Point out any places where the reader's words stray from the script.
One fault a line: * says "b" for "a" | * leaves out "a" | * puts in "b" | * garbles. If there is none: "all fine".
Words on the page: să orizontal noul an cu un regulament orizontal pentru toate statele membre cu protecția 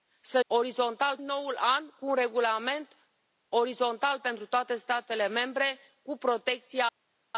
all fine